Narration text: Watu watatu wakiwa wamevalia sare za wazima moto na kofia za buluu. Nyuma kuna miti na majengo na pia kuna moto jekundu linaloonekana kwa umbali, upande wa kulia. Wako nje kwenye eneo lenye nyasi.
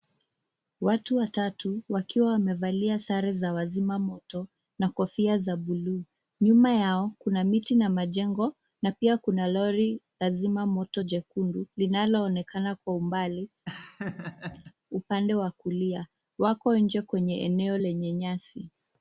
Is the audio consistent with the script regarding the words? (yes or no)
no